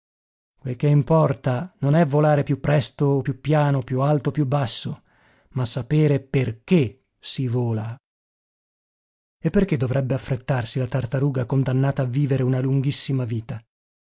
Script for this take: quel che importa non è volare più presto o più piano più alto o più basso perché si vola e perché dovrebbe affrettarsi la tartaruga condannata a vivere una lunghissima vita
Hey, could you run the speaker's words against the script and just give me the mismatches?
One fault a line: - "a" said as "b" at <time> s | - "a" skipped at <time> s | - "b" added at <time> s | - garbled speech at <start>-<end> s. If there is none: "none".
- "ma sapere" added at 5.5 s